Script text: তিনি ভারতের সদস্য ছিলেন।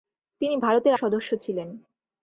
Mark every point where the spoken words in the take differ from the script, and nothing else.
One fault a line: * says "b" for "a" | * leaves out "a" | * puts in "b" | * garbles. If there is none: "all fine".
all fine